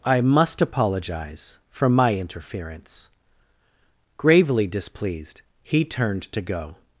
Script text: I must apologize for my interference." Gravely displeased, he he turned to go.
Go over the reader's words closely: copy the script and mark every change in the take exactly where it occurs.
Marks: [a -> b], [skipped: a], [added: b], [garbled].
I must apologize for my interference." Gravely displeased, he [skipped: he] turned to go.